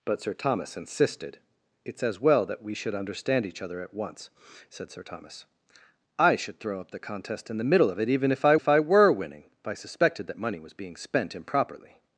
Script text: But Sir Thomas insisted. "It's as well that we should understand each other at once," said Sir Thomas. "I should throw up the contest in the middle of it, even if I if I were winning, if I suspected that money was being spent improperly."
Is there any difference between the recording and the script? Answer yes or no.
no